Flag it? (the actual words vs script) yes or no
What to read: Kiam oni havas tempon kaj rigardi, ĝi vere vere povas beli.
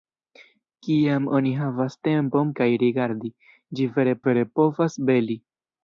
no